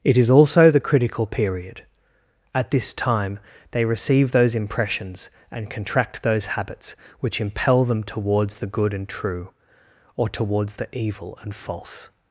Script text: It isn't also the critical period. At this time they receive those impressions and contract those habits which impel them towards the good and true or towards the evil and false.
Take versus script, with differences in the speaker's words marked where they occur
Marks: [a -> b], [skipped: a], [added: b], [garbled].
It [isn't -> is] also the critical period. At this time they receive those impressions and contract those habits which impel them towards the good and true or towards the evil and false.